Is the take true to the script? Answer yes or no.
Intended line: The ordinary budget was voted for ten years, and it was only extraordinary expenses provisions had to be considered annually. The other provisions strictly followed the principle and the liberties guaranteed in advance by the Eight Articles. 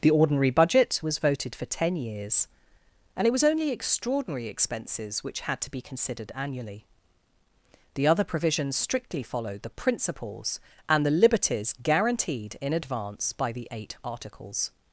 no